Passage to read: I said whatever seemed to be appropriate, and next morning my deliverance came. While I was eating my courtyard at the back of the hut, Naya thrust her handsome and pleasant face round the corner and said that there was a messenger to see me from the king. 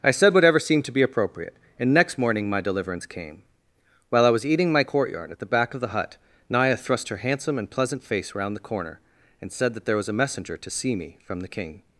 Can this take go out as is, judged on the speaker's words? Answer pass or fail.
pass